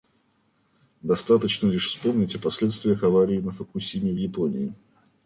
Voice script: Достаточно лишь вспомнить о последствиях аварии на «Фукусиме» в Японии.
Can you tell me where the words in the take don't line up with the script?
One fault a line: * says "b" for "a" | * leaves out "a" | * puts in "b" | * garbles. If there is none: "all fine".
all fine